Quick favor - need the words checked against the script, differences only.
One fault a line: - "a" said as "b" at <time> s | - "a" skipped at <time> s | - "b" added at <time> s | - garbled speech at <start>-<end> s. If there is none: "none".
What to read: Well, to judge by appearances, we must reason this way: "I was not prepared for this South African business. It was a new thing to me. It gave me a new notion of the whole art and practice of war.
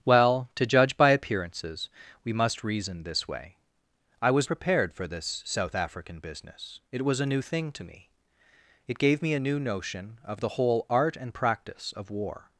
- "not" skipped at 4.5 s